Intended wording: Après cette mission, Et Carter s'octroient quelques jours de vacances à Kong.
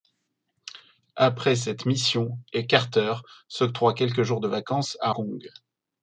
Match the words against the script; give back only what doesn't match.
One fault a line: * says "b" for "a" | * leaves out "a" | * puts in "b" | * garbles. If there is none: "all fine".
all fine